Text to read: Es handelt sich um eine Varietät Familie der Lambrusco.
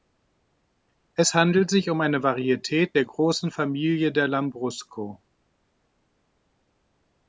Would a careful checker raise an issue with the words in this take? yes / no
yes